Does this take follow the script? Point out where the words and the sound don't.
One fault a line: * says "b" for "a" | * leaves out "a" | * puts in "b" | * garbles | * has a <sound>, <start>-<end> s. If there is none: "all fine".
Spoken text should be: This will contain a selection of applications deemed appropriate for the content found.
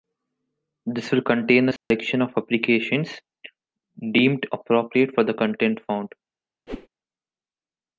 * has a dropout, 1.8-1.9 s
* has a whoosh, 6.7-6.9 s